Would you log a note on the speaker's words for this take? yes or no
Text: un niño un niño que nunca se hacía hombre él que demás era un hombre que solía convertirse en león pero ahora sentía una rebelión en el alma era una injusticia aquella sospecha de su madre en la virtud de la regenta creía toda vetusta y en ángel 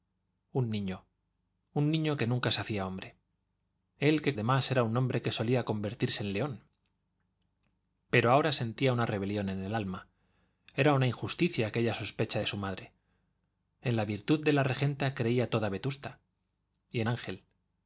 no